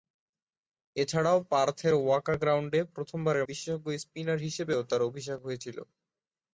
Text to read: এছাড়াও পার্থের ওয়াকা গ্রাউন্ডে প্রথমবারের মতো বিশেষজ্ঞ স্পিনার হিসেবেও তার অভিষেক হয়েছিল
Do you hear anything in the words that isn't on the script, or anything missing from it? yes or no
yes